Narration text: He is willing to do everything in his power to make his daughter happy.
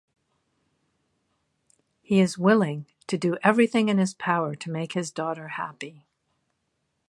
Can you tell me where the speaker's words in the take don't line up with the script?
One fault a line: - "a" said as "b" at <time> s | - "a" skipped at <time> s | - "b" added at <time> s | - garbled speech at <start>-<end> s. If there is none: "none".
none